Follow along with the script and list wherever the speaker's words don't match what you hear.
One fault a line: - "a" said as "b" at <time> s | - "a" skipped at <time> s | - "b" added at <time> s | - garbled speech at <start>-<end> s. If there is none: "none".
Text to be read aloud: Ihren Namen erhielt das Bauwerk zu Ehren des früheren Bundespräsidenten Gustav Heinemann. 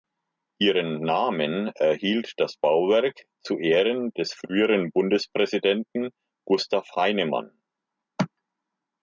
none